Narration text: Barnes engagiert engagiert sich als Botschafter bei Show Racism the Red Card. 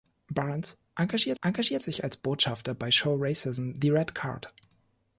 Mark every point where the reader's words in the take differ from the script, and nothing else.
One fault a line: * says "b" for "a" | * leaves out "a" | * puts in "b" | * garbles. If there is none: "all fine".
all fine